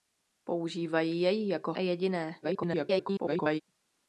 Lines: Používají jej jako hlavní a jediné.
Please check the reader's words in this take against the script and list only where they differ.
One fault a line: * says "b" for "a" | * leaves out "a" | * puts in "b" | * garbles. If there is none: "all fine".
* leaves out "hlavní"
* garbles